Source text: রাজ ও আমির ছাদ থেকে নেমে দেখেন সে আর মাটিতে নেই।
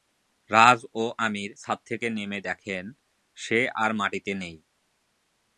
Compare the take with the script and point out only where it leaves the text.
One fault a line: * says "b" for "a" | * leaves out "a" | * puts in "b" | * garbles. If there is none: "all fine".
all fine